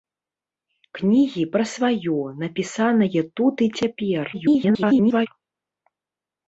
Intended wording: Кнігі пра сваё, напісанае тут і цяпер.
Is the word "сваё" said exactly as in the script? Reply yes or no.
yes